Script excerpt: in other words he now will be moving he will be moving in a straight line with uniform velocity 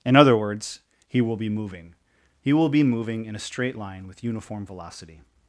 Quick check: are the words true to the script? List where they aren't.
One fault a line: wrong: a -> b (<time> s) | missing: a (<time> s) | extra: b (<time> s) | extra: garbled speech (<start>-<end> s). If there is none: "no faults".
missing: now (1.2 s)